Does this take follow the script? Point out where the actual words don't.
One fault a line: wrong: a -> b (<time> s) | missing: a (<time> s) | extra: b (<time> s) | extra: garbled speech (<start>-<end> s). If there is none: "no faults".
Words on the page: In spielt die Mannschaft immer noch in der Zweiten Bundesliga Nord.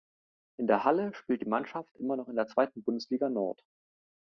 extra: der Halle (0.7 s)